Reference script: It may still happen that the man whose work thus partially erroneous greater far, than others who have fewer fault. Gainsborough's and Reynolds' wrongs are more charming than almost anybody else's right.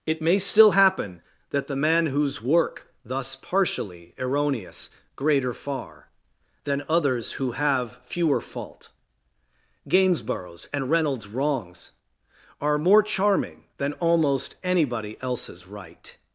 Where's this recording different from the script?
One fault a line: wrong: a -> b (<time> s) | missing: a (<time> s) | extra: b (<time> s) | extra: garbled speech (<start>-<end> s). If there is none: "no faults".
no faults